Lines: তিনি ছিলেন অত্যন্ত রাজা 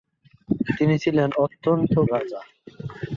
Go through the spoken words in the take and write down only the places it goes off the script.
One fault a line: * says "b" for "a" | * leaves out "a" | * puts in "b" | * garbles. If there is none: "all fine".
all fine